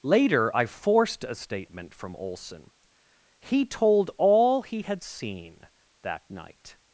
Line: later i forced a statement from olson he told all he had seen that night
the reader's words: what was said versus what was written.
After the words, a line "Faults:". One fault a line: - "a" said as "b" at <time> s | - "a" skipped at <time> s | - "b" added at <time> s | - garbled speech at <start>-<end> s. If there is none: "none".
later i forced a statement from olson he told all he had seen that night
Faults:
none